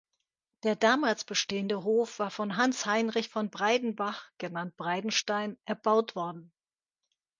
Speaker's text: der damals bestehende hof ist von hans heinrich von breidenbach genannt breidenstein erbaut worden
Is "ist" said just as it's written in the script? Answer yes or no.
no